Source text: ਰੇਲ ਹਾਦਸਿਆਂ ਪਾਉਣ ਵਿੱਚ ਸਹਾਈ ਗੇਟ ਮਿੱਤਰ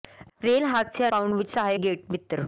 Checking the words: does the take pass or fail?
pass